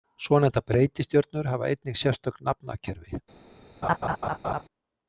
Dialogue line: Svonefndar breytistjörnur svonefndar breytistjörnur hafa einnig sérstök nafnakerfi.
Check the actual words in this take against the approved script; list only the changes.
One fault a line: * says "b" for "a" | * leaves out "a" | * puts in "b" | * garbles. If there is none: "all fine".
* leaves out "svonefndar breytistjörnur"